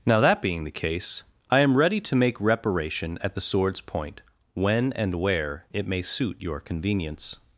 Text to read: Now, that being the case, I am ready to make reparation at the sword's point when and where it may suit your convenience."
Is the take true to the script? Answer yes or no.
yes